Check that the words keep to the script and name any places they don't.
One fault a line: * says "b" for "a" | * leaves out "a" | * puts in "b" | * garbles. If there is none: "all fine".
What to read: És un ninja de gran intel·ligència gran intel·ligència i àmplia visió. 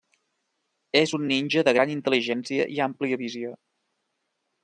* leaves out "gran intel·ligència"